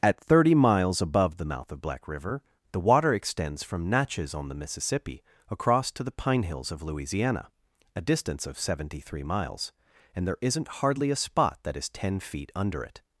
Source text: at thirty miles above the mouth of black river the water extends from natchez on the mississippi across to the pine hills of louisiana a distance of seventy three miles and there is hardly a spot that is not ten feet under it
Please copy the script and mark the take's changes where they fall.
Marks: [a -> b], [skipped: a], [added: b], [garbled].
at thirty miles above the mouth of black river the water extends from natchez on the mississippi across to the pine hills of louisiana a distance of seventy three miles and there [is -> isn't] hardly a spot that is [skipped: not] ten feet under it